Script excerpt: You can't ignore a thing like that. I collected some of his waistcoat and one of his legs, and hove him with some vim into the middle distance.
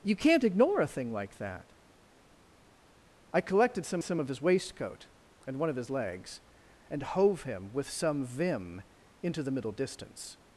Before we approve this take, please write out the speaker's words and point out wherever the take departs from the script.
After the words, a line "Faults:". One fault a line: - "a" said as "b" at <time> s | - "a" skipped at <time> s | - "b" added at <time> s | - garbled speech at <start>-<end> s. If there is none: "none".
You can't ignore a thing like that. I collected some some of his waistcoat and one of his legs, and hove him with some vim into the middle distance.
Faults:
- "some" added at 4.0 s